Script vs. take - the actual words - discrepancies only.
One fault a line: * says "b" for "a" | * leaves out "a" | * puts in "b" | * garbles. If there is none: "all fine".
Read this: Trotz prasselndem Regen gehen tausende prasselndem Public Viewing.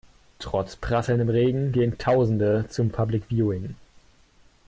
* says "zum" for "prasselndem"